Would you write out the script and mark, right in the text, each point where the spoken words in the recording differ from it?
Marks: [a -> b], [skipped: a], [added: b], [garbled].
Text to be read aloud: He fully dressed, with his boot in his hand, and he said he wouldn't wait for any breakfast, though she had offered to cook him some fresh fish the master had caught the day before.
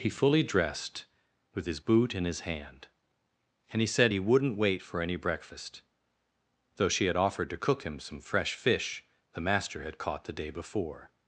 He fully dressed, with his boot in his hand, and he said he wouldn't wait for any breakfast, though she had offered to cook him some fresh fish the master had caught the day before.